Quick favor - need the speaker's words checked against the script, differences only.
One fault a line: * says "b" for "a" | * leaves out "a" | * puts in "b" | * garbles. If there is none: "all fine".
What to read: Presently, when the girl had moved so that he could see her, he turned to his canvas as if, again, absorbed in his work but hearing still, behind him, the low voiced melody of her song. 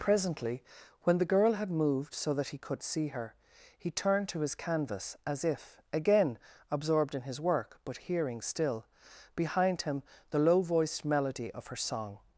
all fine